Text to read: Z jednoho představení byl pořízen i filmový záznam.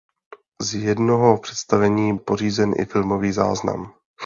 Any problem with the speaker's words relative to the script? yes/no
yes